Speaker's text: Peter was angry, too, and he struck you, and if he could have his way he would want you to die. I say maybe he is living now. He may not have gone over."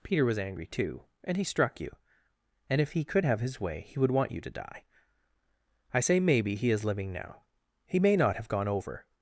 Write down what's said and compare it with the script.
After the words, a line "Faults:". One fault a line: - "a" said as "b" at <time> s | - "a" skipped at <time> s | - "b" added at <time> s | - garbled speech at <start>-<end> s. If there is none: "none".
Peter was angry, too, and he struck you, and if he could have his way he would want you to die. I say maybe he is living now. He may not have gone over."
Faults:
none